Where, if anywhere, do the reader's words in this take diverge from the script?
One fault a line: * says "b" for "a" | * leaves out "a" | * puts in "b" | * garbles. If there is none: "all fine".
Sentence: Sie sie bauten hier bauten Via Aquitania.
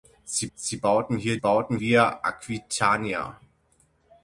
all fine